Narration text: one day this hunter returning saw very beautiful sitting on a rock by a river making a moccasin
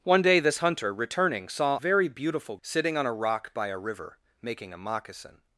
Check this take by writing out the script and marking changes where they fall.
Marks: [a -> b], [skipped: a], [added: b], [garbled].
one day this hunter returning saw very beautiful sitting on a rock by a river making a moccasin